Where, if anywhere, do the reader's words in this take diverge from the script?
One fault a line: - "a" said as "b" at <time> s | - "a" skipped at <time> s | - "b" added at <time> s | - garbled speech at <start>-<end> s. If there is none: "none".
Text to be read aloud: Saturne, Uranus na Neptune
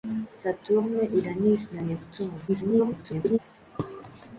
- garbled speech at 2.5-3.4 s